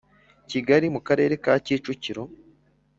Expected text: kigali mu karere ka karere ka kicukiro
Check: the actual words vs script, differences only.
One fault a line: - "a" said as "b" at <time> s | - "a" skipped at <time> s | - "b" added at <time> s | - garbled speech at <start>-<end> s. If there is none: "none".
- "karere ka" skipped at 1.5 s